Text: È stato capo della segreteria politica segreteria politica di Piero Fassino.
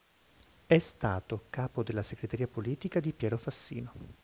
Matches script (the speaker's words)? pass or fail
fail